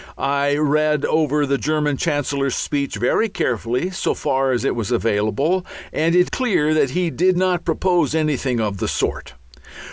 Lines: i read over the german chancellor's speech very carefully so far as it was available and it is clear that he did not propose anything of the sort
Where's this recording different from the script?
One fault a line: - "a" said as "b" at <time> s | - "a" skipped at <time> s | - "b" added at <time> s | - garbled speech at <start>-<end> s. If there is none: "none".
- "is" skipped at 6.3 s